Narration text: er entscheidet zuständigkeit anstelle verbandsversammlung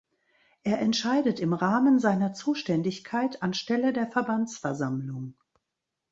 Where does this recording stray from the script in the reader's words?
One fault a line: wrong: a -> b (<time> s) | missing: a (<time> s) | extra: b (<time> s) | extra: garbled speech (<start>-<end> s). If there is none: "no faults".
extra: im rahmen seiner (1.4 s)
extra: der (3.9 s)